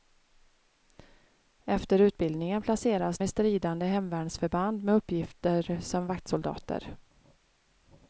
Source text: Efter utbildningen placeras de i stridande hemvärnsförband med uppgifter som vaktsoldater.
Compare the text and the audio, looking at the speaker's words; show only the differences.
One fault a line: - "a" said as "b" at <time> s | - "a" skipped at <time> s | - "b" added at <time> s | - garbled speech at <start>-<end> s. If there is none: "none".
- "de" skipped at 3.2 s